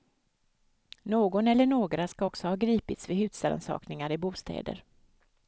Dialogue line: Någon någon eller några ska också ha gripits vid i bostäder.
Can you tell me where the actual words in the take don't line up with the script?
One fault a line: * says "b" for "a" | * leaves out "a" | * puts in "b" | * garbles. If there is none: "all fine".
* leaves out "någon"
* puts in "husrannsakningar"